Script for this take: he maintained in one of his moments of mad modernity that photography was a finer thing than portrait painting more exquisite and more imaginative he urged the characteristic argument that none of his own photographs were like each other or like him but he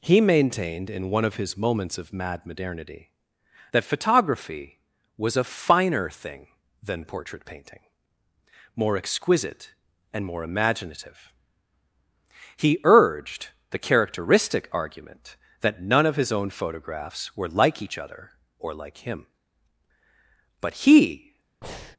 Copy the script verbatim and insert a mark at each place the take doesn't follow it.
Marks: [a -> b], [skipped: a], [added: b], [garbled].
he maintained in one of his moments of mad modernity that photography was a finer thing than portrait painting more exquisite and more imaginative he urged the characteristic argument that none of his own photographs were like each other or like him but he